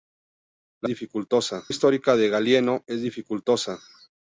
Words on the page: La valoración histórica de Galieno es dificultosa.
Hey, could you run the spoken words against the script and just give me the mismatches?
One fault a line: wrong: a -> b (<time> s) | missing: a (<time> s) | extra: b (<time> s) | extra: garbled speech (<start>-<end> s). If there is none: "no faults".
wrong: valoración -> dificultosa (0.9 s)